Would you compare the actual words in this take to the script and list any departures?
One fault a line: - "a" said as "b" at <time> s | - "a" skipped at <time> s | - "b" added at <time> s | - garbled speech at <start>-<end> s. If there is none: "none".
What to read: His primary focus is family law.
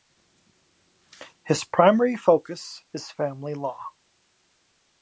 none